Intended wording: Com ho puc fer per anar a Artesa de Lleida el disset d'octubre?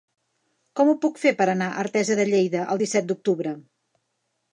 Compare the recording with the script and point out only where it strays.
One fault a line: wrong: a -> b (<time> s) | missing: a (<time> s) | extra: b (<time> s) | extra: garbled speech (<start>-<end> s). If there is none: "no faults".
no faults